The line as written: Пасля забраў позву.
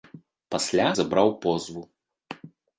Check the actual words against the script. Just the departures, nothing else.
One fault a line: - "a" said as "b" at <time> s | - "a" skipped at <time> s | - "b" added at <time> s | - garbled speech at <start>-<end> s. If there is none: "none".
none